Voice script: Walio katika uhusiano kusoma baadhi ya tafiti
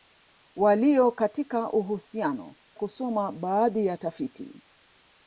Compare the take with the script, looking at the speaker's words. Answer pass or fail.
pass